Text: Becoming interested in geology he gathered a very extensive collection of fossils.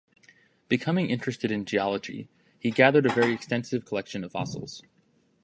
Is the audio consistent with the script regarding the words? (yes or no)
yes